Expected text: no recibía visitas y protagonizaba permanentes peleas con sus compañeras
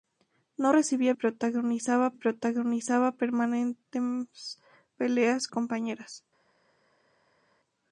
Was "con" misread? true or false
true